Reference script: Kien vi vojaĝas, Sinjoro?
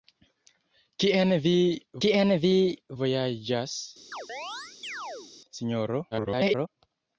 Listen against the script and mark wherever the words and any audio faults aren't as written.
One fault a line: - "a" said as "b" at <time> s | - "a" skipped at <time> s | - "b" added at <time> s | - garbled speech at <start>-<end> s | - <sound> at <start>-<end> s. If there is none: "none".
- "kien vi" added at 2.0 s
- chirp at 4.1-5.3 s
- garbled speech at 6.1-6.7 s